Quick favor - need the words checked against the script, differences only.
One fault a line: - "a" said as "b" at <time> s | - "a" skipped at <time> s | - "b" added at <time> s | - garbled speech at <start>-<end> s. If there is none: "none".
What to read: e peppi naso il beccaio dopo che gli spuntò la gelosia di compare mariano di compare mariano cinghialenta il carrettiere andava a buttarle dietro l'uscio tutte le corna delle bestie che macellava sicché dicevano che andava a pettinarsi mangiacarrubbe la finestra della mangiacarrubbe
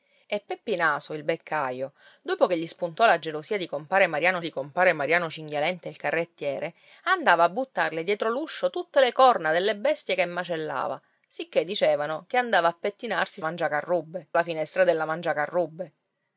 none